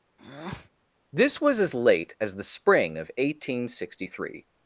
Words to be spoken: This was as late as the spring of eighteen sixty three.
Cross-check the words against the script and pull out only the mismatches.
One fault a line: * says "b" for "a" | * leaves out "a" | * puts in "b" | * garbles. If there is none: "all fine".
all fine